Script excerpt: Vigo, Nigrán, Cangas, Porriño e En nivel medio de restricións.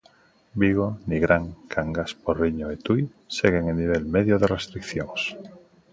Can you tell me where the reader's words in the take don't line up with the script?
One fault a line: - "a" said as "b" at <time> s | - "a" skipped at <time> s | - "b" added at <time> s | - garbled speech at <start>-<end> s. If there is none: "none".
- "Tui seguen" added at 2.9 s